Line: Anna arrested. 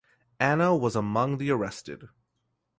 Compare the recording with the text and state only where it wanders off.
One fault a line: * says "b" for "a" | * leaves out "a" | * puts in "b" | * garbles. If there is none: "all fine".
* puts in "was among the"